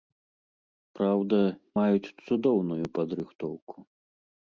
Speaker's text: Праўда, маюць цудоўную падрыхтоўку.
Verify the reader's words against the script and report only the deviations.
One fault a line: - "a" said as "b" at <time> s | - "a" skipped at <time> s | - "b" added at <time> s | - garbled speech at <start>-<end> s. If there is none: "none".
none